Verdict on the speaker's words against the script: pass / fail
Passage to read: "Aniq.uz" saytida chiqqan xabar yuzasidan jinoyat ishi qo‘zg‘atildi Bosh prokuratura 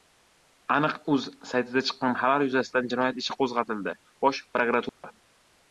pass